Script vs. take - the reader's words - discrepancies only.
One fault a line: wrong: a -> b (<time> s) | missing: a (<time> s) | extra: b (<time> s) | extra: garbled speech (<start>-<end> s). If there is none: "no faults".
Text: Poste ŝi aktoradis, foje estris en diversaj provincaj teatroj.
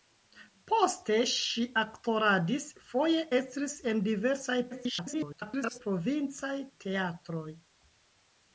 extra: garbled speech (4.7-5.8 s)